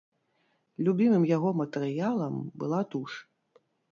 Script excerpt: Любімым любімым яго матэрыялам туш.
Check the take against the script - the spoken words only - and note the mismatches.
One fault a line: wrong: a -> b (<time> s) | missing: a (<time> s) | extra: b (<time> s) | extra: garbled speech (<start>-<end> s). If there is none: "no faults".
missing: любімым (1.3 s)
extra: была (2.6 s)